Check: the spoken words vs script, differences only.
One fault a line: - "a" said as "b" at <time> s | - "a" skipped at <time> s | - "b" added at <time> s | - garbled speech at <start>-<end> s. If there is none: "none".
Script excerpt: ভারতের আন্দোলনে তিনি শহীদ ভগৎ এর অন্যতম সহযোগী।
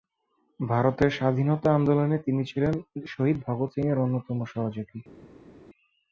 - "স্বাধীনতা" added at 1.1 s
- "ছিলেন" added at 2.5 s
- "সিং" added at 3.7 s